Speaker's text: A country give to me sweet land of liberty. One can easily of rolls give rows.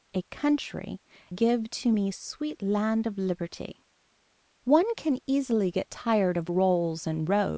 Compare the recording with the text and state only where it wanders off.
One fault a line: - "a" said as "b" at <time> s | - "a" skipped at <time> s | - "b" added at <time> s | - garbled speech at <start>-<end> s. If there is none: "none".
- "get tired" added at 5.7 s
- "give" said as "and" at 7.1 s